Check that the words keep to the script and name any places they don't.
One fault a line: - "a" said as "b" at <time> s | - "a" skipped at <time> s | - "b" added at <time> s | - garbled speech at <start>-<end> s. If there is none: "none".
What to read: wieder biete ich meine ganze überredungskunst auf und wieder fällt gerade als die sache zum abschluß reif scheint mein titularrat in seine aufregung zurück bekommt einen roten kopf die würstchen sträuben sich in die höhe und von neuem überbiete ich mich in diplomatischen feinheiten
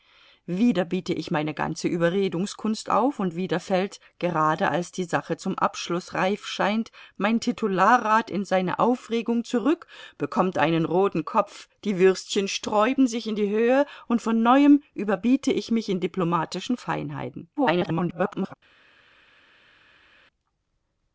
- garbled speech at 17.6-18.5 s